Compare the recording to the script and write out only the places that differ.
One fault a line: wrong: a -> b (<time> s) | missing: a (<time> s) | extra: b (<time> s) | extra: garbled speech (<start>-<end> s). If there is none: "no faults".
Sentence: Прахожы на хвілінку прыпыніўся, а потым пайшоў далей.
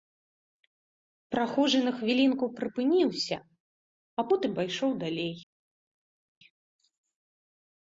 no faults